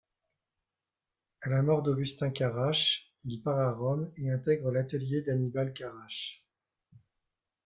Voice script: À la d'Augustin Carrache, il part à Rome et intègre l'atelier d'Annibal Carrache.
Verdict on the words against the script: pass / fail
fail